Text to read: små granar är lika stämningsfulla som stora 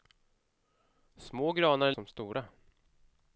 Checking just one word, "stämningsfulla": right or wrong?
wrong